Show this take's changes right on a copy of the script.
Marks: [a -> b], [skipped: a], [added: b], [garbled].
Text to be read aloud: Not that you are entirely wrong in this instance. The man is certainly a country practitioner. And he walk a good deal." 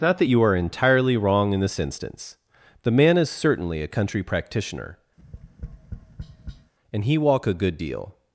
Not that you are entirely wrong in this instance. The man is certainly a country practitioner. And he walk a good deal."